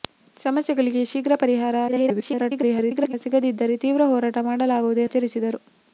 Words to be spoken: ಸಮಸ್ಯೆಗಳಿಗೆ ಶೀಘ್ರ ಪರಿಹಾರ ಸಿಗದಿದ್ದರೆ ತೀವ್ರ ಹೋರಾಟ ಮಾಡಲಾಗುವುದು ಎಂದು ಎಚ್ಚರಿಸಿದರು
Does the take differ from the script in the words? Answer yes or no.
yes